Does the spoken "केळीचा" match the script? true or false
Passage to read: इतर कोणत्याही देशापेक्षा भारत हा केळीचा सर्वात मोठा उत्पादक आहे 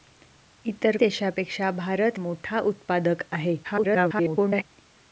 false